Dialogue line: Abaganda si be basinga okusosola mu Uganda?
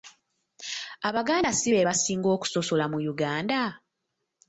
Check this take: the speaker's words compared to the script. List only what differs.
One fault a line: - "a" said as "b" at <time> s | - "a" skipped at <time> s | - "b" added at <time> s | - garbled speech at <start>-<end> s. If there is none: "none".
none